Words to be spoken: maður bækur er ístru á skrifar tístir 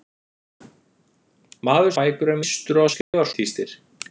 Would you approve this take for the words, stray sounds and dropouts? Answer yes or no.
no